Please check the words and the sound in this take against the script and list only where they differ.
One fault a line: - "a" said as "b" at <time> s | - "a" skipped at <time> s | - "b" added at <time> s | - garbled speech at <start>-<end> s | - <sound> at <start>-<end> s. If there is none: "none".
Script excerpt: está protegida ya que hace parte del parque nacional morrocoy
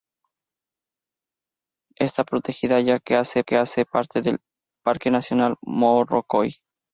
- "que hace" added at 3.4 s